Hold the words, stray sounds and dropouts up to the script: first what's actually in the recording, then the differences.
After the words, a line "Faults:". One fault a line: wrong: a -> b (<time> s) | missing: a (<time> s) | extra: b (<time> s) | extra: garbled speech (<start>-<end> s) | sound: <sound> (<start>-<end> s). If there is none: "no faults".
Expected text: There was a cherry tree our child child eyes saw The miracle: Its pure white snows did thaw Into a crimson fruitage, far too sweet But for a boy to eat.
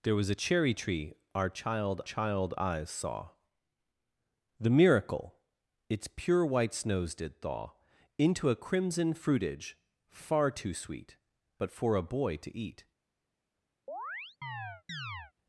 There was a cherry tree our child child eyes saw The miracle: Its pure white snows did thaw Into a crimson fruitage, far too sweet But for a boy to eat.
Faults:
sound: chirp (13.9-15.3 s)